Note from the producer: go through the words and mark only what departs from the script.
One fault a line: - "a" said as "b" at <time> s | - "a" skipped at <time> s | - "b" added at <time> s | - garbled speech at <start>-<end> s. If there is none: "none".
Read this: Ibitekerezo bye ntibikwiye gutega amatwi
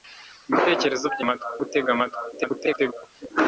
- "ntibikwiye" said as "amatwi" at 1.2 s
- garbled speech at 2.3-2.9 s